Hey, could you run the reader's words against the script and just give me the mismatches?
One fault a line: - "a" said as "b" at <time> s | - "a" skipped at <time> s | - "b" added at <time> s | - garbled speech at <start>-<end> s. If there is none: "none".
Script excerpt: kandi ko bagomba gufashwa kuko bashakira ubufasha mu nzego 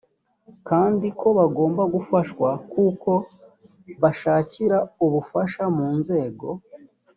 none